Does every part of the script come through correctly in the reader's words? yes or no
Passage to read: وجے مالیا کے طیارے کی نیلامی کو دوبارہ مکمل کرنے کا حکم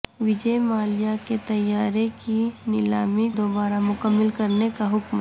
no